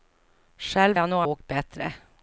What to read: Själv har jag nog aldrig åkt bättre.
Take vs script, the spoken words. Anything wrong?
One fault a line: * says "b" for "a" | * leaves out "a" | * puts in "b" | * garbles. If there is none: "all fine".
* leaves out "har"
* leaves out "aldrig"